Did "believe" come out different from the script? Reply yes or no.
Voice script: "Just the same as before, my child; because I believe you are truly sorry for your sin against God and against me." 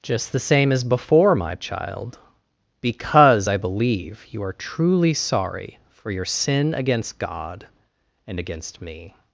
no